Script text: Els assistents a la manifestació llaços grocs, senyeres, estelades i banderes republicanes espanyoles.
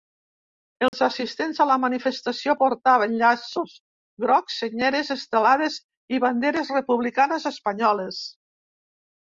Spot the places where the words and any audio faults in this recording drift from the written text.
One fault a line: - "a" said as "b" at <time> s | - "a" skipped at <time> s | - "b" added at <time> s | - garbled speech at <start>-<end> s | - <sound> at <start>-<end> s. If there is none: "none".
- dropout at 0.9-0.9 s
- "portaven" added at 2.6 s